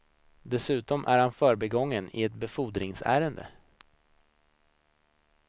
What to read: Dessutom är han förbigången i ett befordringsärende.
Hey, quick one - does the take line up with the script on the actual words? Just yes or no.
yes